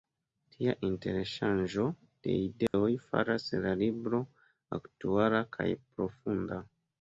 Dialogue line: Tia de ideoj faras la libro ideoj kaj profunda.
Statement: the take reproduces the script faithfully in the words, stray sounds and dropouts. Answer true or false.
false